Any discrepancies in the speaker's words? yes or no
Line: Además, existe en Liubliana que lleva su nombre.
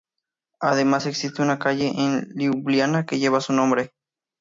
yes